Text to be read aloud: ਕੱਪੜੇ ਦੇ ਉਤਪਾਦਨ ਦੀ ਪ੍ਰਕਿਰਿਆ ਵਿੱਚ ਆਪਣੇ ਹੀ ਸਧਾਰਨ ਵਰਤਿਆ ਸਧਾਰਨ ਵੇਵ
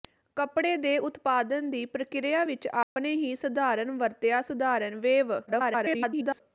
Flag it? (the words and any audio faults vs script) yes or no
yes